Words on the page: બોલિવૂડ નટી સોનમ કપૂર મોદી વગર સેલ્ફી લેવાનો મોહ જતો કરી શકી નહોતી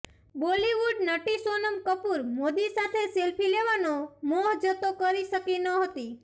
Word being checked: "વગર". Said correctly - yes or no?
no